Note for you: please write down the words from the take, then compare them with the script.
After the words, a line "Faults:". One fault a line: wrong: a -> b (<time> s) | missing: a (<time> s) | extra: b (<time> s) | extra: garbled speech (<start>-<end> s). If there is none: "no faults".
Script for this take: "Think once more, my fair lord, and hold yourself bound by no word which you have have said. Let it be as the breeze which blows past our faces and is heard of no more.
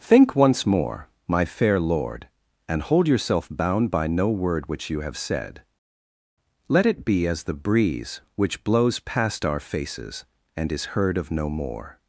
"Think once more, my fair lord, and hold yourself bound by no word which you have said. Let it be as the breeze which blows past our faces and is heard of no more.
Faults:
missing: have (5.2 s)